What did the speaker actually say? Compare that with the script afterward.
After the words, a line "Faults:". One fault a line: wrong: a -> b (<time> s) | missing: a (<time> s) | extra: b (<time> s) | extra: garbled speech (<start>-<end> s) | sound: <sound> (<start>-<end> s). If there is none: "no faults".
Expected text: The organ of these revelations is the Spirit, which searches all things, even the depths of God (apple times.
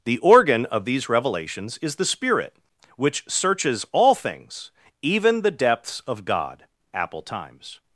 The organ of these revelations is the Spirit, which searches all things, even the depths of God (apple times.
Faults:
no faults